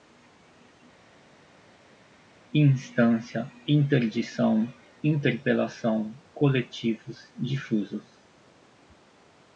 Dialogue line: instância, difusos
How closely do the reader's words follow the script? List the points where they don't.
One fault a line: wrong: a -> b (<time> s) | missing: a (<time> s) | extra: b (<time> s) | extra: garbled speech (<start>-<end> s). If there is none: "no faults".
extra: interdição interpelação coletivos (3.7 s)